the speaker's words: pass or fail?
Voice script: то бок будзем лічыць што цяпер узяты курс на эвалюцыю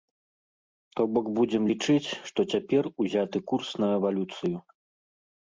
pass